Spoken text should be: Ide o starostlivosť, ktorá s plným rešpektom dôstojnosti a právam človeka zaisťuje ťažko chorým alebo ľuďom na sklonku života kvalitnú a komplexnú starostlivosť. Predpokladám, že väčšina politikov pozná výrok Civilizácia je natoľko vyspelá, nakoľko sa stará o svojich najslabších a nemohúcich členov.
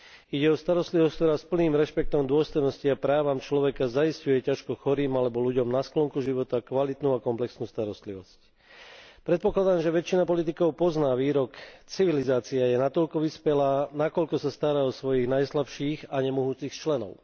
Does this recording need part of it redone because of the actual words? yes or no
no